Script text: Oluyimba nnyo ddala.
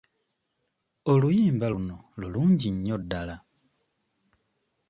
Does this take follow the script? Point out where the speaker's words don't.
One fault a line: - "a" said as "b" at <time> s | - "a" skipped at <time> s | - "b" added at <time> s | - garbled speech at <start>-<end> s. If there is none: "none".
- "luno lulungi" added at 1.7 s